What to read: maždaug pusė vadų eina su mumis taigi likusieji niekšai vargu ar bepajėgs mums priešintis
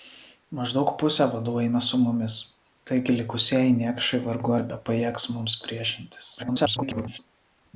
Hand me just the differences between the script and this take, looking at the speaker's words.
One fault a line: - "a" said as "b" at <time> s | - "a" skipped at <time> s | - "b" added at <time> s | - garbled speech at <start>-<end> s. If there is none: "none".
- garbled speech at 6.4-7.2 s